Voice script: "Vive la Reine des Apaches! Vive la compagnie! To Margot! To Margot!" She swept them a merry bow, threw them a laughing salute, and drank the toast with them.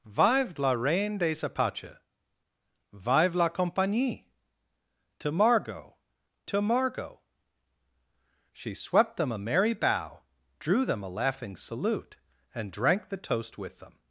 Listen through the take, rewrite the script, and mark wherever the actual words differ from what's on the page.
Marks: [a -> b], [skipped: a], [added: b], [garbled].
"Vive la Reine des Apaches! Vive la compagnie! To Margot! To Margot!" She swept them a merry bow, [threw -> drew] them a laughing salute, and drank the toast with them.